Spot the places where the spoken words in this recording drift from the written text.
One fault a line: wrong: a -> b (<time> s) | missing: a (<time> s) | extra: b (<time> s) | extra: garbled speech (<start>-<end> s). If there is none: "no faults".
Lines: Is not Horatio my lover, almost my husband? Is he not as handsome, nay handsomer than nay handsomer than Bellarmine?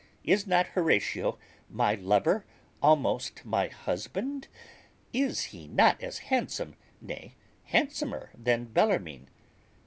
missing: nay handsomer than (8.7 s)